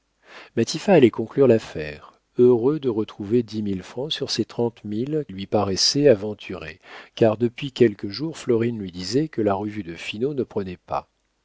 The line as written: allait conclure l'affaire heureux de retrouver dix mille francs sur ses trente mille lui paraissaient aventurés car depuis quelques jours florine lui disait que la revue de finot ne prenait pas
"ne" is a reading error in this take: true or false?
false